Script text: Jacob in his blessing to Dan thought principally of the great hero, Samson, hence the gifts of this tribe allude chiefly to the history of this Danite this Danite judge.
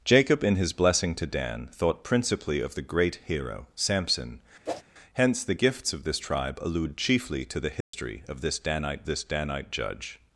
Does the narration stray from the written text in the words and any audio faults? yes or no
yes